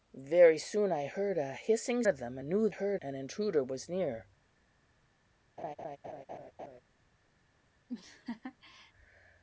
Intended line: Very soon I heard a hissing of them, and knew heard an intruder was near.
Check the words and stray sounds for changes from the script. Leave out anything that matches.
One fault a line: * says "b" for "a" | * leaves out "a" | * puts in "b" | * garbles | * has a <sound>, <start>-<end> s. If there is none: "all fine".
* has a laugh, 5.6-6.8 s
* has a laugh, 7.9-8.9 s